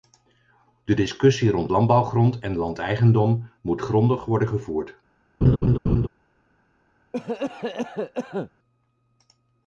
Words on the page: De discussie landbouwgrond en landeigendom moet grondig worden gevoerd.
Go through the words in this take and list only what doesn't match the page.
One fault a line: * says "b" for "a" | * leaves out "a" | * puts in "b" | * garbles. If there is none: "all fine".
* puts in "rond"